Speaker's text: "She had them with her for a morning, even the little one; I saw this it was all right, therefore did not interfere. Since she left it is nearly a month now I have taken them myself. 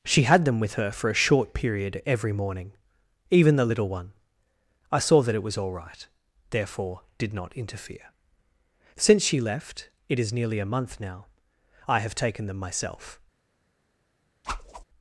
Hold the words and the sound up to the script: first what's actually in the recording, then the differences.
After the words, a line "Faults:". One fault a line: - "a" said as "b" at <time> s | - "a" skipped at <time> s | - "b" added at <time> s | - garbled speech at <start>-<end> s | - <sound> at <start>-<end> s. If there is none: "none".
"She had them with her for a short period every morning, even the little one; I saw that it was all right, therefore did not interfere. Since she left it is nearly a month now I have taken them myself.
Faults:
- "short period every" added at 1.2 s
- "this" said as "that" at 5.2 s
- whoosh at 14.4-14.8 s